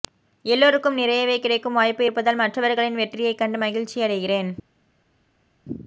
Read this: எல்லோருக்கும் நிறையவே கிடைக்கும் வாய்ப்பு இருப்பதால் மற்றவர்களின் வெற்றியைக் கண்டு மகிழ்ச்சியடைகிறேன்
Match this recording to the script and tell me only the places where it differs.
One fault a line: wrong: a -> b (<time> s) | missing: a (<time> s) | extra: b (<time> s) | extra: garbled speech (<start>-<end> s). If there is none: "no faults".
no faults